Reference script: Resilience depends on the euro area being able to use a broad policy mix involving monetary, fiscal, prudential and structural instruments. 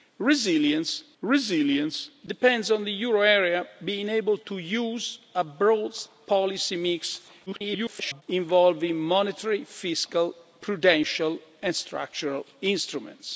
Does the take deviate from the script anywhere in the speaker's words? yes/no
yes